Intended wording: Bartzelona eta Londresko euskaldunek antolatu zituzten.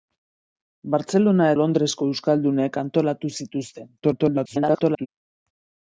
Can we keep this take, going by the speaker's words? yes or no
no